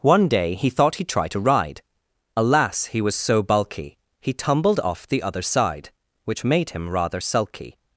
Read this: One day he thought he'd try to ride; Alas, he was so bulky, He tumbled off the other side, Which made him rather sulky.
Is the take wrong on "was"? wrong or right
right